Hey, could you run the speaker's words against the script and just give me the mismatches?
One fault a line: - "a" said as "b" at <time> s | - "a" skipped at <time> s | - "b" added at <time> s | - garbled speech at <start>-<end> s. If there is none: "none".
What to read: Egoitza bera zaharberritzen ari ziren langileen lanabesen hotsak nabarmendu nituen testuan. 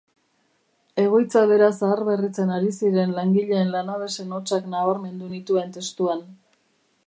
none